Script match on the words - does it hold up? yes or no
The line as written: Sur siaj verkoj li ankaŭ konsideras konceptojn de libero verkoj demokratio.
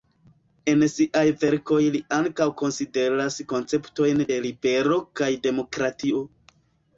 no